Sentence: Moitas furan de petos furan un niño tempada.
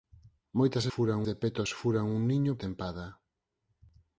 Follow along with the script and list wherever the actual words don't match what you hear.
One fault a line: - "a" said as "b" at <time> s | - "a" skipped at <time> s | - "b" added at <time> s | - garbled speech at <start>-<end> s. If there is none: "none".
none